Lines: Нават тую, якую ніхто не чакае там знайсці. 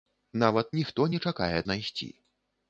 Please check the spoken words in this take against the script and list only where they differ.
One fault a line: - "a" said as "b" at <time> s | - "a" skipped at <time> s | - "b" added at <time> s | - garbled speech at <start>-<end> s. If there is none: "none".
- "тую якую" skipped at 0.7 s
- "там" skipped at 1.6 s